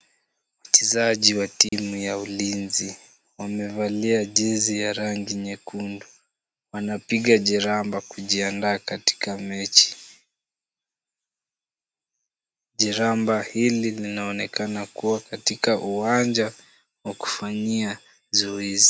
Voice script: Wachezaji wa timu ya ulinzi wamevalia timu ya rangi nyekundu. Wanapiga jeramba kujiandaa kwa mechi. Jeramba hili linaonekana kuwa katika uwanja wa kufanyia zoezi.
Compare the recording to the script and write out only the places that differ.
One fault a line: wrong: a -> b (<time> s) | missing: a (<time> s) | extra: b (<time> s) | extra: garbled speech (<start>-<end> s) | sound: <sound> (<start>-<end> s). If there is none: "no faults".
sound: dropout (1.7-1.7 s)
wrong: timu -> jezi (4.2 s)
wrong: kwa -> katika (8.8 s)